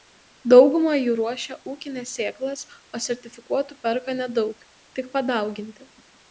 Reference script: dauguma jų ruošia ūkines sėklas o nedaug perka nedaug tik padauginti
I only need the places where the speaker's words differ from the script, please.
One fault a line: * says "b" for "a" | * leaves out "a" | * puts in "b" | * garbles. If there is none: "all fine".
* says "sertifikuotų" for "nedaug"